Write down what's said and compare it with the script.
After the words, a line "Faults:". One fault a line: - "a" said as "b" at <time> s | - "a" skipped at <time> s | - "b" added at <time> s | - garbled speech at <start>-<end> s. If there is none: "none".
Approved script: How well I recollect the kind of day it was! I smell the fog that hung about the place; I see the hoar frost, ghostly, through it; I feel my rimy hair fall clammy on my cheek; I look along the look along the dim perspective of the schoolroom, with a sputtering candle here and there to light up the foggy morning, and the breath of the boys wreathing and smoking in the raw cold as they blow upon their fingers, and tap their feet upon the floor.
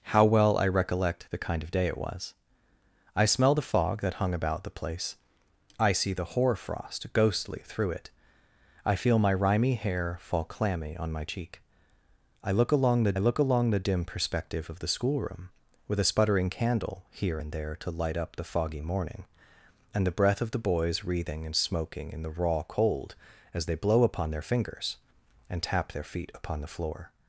How well I recollect the kind of day it was! I smell the fog that hung about the place; I see the hoar frost, ghostly, through it; I feel my rimy hair fall clammy on my cheek; I look along the look along the dim perspective of the schoolroom, with a sputtering candle here and there to light up the foggy morning, and the breath of the boys wreathing and smoking in the raw cold as they blow upon their fingers, and tap their feet upon the floor.
Faults:
none